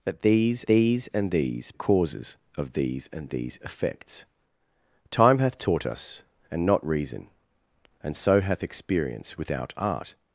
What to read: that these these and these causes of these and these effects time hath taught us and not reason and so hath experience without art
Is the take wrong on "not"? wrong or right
right